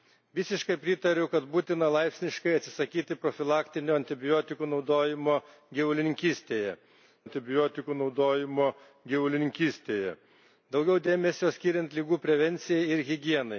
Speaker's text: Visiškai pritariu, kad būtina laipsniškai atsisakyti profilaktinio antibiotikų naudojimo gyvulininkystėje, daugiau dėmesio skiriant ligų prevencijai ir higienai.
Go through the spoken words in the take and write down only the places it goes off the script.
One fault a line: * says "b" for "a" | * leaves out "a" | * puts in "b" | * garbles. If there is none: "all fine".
* puts in "antibiotikų naudojimo gyvulininkystėje"